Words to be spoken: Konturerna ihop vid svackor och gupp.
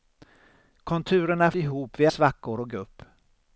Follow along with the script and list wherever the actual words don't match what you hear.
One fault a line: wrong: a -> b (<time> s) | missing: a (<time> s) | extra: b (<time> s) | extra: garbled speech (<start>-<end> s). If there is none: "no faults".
no faults